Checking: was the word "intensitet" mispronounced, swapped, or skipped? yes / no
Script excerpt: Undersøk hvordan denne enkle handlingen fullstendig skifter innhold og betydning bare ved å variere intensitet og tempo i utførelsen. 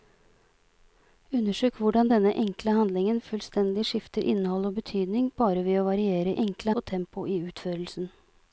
yes